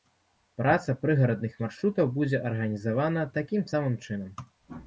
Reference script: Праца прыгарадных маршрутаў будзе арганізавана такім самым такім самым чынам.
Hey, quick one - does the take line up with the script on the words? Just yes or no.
no